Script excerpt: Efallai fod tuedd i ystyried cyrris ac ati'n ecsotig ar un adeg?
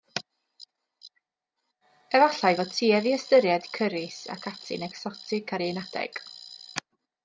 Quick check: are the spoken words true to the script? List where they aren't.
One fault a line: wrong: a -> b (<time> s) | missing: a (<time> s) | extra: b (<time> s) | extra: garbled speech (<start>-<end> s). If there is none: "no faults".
no faults